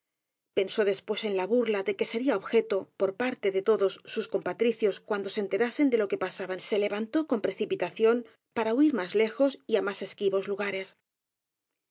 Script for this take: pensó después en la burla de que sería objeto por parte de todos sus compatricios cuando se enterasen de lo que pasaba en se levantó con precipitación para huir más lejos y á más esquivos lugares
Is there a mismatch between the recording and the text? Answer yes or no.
no